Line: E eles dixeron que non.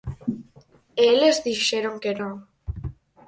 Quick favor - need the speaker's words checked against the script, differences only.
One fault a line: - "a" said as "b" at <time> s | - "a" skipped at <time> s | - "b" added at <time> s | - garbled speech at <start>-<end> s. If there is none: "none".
none